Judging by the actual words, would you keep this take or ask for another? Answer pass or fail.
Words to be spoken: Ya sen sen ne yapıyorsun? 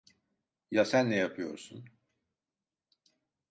fail